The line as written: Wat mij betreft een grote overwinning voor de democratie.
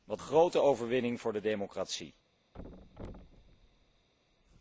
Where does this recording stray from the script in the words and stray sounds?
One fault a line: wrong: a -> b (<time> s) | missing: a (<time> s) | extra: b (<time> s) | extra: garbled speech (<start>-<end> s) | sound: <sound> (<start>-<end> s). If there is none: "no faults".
missing: mij betreft een (0.2 s)
sound: thud (2.5-4.1 s)